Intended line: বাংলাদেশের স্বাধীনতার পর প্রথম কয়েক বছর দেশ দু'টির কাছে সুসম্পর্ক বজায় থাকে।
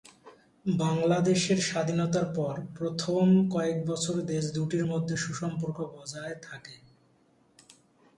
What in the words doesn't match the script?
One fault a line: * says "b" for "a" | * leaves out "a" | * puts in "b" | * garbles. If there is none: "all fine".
* says "মধ্যে" for "কাছে"